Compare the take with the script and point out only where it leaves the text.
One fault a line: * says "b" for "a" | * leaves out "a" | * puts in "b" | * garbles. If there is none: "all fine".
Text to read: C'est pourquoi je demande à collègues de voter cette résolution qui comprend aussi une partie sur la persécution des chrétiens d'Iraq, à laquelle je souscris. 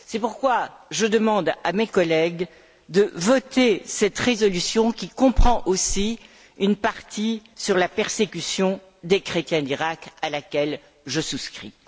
* puts in "mes"